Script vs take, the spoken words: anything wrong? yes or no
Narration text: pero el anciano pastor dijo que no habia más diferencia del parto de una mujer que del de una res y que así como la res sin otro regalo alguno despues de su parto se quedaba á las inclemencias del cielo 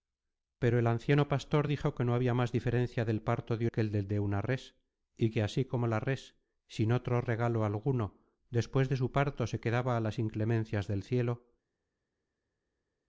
yes